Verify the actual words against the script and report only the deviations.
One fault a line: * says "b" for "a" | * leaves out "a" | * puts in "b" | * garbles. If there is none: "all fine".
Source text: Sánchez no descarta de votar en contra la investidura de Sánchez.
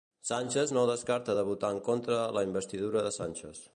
all fine